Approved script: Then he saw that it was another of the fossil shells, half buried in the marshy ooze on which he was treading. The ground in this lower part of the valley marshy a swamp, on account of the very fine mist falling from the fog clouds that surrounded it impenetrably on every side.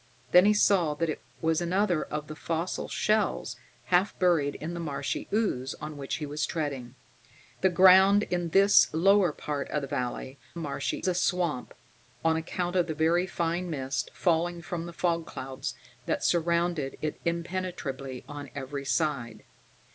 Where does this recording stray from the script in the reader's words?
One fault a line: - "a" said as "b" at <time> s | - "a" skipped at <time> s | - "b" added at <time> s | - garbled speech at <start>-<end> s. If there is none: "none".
none